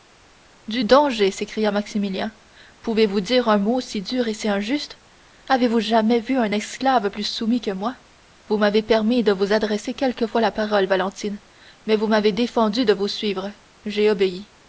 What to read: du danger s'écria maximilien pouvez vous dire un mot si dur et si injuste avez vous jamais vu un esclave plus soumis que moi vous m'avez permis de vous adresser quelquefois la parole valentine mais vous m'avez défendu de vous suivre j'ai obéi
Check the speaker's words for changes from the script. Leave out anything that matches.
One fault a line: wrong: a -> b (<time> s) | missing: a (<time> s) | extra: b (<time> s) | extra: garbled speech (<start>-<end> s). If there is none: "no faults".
no faults